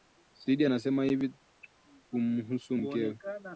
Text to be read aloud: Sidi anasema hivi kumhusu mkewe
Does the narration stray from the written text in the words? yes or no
no